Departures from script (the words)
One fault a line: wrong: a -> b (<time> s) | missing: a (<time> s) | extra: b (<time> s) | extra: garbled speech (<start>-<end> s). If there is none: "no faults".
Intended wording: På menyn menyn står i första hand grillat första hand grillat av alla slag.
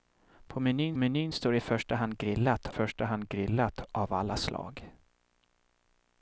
no faults